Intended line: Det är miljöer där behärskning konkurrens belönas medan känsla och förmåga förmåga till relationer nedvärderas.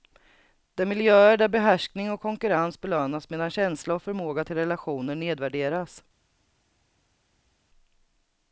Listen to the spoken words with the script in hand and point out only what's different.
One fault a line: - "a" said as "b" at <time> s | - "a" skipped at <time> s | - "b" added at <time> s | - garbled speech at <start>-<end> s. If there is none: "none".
- "och" added at 2.1 s
- "förmåga" skipped at 4.4 s